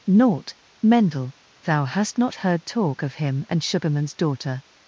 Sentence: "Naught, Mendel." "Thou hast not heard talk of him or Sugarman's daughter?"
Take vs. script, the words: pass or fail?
fail